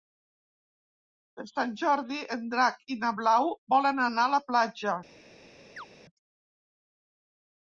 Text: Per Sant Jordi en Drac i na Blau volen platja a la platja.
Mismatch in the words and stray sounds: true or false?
true